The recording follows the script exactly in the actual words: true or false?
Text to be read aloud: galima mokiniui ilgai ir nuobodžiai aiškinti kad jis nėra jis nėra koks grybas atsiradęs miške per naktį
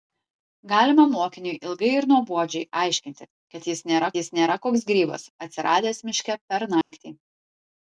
true